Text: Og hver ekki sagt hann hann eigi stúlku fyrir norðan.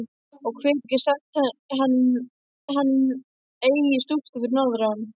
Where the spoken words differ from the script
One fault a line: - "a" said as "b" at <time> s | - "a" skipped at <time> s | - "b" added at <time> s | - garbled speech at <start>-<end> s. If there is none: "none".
none